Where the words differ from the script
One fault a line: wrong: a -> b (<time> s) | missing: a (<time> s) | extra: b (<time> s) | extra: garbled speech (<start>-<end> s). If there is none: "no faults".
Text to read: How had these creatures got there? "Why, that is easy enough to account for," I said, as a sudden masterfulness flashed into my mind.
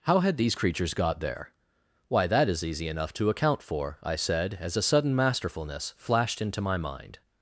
no faults